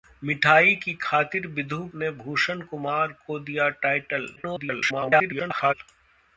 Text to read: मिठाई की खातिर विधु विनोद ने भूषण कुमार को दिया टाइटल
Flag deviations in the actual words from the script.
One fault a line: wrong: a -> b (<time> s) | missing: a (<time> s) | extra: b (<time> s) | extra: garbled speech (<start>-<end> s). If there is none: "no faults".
missing: विनोद (1.8 s)
extra: garbled speech (4.4-5.7 s)